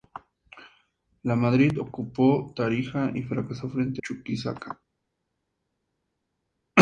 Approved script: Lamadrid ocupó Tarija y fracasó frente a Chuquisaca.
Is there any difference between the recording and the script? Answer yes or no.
yes